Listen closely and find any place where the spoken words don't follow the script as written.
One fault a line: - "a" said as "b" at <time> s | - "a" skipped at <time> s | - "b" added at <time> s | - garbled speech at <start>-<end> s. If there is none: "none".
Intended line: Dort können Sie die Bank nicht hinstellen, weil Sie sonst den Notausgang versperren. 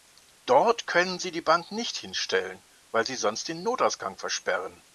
none